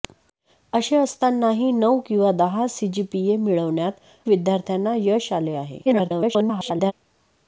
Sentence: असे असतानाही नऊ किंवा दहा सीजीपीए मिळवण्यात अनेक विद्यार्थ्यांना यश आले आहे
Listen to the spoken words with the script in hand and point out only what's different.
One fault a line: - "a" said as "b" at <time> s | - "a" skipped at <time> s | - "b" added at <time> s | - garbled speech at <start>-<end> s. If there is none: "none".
- "अनेक" skipped at 3.9 s
- garbled speech at 5.8-6.9 s